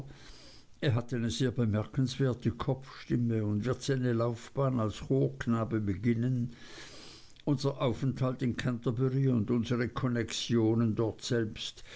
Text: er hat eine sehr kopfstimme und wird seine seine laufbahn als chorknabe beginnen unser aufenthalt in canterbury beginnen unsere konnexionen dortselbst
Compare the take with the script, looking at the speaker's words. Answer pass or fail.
fail